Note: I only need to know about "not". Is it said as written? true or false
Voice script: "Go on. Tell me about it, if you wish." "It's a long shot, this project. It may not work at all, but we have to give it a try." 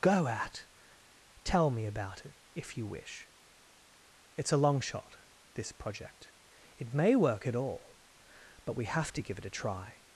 false